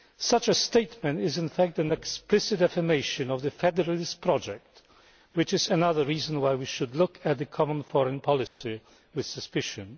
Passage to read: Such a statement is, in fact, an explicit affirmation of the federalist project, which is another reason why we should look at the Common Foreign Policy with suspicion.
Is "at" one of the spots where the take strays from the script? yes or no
no